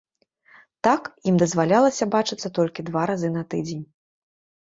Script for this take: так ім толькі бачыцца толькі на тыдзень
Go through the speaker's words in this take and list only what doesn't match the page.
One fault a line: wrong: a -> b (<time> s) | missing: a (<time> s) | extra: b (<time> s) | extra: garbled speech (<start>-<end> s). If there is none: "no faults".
wrong: толькі -> дазвалялася (1.4 s)
extra: два разы (2.9 s)